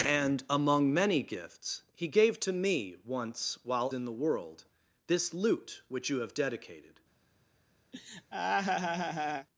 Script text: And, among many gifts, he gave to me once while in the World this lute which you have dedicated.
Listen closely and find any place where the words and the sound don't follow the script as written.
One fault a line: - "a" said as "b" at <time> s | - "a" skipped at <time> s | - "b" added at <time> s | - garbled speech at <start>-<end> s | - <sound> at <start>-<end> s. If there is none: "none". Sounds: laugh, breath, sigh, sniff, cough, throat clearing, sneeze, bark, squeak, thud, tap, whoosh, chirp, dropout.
- laugh at 7.9-9.5 s